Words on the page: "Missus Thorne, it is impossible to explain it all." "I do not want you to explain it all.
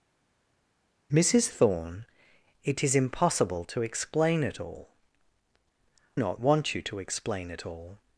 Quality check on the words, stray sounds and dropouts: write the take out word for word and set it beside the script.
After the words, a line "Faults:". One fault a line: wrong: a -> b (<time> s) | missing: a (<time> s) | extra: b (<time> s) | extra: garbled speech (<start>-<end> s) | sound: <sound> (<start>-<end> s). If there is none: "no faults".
"Missus Thorne, it is impossible to explain it all." "not want you to explain it all.
Faults:
missing: I do (4.9 s)